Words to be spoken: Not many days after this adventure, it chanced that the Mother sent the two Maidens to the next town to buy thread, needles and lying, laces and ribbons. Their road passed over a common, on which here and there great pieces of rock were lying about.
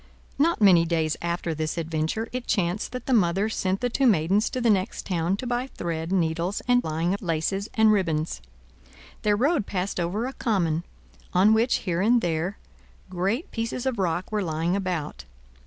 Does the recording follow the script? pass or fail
pass